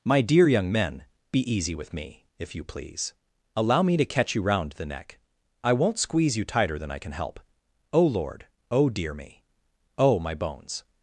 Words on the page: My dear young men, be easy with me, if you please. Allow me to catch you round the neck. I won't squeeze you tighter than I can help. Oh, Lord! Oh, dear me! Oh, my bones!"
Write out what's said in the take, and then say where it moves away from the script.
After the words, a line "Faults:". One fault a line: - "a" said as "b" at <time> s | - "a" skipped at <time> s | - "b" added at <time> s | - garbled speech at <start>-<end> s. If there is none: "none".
My dear young men, be easy with me, if you please. Allow me to catch you round the neck. I won't squeeze you tighter than I can help. Oh, Lord! Oh, dear me! Oh, my bones!"
Faults:
none